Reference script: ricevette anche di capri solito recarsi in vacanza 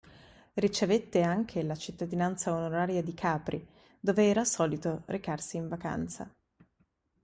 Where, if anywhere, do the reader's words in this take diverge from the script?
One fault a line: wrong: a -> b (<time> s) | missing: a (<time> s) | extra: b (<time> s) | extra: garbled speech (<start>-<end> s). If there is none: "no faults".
extra: la cittadinanza onoraria (1.6 s)
extra: dove era (4.0 s)